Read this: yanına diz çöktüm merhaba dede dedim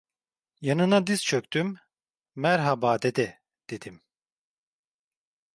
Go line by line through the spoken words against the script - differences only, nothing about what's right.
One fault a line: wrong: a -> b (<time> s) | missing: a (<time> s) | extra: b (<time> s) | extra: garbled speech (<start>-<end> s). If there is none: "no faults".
no faults